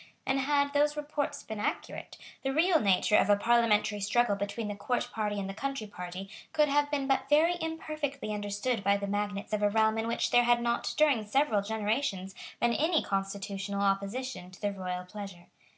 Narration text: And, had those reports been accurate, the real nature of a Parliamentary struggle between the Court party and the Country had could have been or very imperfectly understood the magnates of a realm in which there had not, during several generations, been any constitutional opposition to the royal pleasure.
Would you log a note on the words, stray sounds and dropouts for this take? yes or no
yes